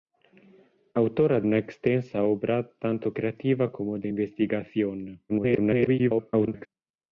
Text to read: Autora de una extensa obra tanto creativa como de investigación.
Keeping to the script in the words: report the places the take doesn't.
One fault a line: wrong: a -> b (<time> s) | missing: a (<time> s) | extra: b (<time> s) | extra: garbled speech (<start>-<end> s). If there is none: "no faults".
missing: de (1.4 s)
extra: garbled speech (5.3-6.7 s)